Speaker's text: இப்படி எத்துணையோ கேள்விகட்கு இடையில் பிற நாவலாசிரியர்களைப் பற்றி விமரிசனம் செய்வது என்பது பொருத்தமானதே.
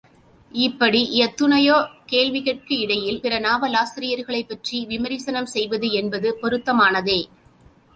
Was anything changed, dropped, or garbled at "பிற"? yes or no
no